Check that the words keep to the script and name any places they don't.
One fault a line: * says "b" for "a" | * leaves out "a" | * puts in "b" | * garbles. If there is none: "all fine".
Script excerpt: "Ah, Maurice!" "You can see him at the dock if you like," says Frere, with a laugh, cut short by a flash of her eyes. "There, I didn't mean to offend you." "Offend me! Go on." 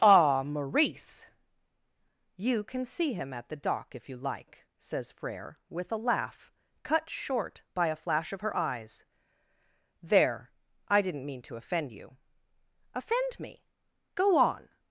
all fine